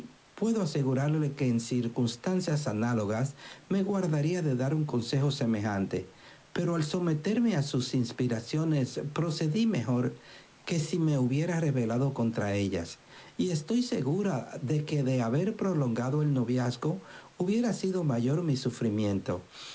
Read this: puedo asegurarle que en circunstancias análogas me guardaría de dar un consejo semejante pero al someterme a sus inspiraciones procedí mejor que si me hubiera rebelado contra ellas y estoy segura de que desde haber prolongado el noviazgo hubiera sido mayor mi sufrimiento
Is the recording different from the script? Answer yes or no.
yes